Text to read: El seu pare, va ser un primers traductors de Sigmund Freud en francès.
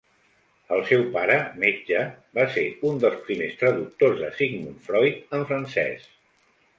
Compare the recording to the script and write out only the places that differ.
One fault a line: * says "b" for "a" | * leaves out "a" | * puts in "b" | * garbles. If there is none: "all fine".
* puts in "metge"
* puts in "dels"